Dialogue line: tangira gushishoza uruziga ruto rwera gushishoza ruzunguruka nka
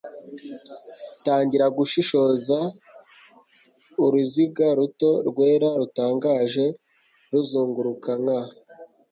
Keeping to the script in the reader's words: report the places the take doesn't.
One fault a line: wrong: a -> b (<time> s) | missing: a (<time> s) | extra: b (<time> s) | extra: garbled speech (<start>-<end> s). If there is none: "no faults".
wrong: gushishoza -> rutangaje (5.8 s)